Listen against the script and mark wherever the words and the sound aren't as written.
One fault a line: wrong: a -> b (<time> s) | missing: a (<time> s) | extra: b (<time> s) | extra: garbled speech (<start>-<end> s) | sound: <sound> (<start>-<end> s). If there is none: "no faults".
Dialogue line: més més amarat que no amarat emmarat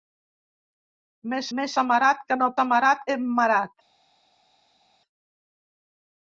no faults